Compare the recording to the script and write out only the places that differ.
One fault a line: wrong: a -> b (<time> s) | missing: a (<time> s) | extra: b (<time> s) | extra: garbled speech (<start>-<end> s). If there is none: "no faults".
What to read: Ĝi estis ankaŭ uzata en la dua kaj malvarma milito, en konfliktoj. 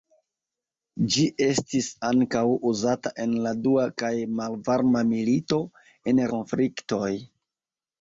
no faults